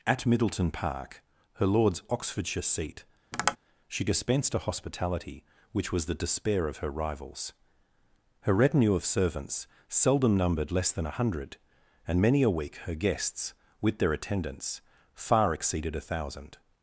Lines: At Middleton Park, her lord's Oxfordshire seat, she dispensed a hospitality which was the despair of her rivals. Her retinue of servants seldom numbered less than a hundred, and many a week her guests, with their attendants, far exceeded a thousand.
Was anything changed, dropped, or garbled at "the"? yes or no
no